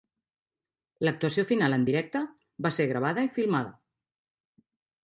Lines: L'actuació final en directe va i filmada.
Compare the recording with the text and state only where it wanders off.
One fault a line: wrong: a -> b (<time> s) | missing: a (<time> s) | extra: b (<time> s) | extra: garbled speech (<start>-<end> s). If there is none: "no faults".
extra: ser gravada (2.8 s)